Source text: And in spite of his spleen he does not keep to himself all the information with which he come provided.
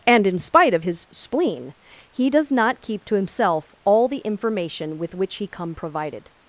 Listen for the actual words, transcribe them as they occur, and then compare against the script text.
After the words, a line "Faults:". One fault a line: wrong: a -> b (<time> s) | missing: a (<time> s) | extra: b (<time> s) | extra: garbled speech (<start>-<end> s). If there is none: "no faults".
And in spite of his spleen he does not keep to himself all the information with which he come provided.
Faults:
no faults